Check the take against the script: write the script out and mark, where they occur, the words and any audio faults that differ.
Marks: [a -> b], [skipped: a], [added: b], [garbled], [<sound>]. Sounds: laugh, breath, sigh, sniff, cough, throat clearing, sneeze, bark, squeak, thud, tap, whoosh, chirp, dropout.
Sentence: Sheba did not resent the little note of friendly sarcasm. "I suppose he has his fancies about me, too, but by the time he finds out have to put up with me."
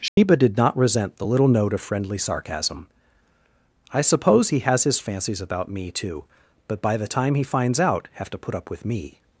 Sheba [dropout] did not resent the little note of friendly sarcasm. "I suppose he has his fancies about me, too, but by the time he finds out have to put up with me."